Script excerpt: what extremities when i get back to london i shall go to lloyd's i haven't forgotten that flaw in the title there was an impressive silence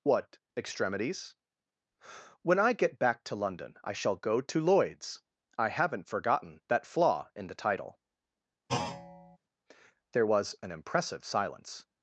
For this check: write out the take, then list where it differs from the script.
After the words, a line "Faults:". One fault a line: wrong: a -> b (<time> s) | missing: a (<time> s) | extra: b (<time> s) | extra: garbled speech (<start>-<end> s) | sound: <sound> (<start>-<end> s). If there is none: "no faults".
what extremities when i get back to london i shall go to lloyd's i haven't forgotten that flaw in the title there was an impressive silence
Faults:
sound: thud (8.7-9.4 s)